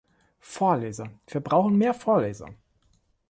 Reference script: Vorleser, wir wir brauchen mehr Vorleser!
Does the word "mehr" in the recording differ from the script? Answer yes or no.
no